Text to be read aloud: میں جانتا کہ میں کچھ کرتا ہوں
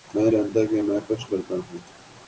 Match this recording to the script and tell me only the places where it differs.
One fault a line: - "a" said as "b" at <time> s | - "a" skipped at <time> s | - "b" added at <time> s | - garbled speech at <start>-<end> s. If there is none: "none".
none